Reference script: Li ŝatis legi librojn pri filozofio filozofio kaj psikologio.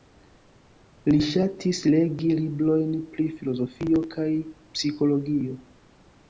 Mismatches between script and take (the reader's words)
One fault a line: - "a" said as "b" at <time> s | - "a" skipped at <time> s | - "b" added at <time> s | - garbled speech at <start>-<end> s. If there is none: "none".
- "filozofio" skipped at 4.0 s